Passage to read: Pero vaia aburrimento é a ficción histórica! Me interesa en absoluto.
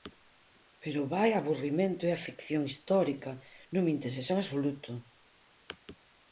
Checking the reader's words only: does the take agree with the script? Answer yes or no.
no